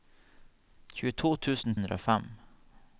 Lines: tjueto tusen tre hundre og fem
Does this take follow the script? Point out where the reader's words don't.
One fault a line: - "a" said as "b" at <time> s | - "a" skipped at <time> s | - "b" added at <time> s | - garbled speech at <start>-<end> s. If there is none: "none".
- "tre" skipped at 1.8 s